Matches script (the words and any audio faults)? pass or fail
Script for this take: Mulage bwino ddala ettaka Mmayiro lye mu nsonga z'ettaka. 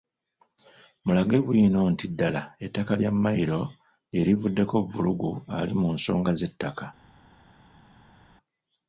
fail